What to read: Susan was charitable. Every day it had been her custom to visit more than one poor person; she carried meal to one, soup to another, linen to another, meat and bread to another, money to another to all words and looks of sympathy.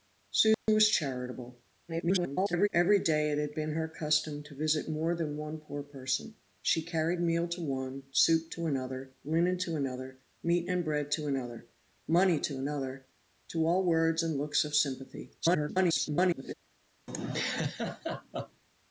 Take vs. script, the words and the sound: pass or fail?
fail